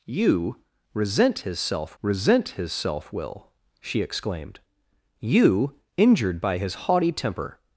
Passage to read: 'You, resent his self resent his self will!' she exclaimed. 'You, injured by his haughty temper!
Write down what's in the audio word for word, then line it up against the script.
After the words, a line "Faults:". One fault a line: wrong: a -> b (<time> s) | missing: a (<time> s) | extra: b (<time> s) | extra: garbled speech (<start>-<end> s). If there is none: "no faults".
'You, resent his self resent his self will!' she exclaimed. 'You, injured by his haughty temper!
Faults:
no faults